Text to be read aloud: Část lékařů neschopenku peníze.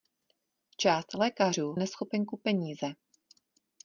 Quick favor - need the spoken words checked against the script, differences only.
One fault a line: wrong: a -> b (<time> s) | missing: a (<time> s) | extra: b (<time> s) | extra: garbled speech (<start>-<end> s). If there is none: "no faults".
no faults